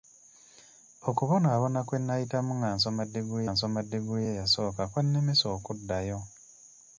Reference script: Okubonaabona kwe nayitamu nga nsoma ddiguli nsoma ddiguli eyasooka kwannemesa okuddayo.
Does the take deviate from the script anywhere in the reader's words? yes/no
no